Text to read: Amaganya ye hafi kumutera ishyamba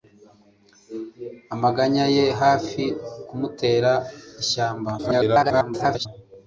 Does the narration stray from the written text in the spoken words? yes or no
yes